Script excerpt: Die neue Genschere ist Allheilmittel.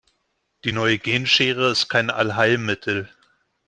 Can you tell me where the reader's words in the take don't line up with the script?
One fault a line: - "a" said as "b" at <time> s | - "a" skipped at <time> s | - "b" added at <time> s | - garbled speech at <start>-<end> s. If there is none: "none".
- "kein" added at 1.9 s